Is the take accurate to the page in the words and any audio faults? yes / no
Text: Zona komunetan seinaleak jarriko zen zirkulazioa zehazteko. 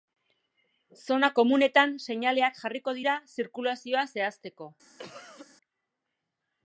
no